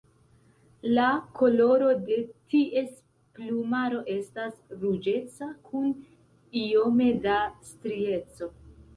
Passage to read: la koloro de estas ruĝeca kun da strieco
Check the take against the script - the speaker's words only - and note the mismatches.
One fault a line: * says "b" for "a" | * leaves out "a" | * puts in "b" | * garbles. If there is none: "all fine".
* puts in "ties plumaro"
* puts in "iome"